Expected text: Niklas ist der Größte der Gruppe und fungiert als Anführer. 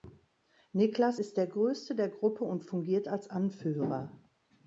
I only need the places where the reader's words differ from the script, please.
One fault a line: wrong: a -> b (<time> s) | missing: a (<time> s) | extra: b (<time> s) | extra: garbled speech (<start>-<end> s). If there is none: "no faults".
no faults